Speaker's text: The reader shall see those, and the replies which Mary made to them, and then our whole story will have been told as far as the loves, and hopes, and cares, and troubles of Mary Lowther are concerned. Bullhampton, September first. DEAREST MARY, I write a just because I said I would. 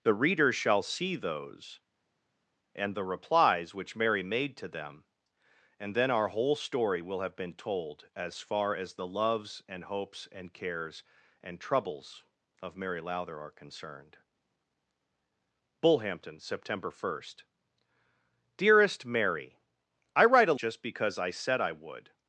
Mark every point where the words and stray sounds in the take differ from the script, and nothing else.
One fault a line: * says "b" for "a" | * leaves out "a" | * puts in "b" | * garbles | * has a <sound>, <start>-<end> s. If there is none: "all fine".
all fine